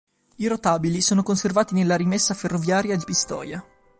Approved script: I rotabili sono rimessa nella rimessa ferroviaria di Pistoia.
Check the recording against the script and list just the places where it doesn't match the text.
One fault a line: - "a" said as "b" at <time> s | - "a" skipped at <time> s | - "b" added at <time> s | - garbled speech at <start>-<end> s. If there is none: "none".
- "rimessa" said as "conservati" at 1.2 s